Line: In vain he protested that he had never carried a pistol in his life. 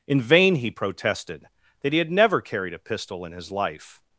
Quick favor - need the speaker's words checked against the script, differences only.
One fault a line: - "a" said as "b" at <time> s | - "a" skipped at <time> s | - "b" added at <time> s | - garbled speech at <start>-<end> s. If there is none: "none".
none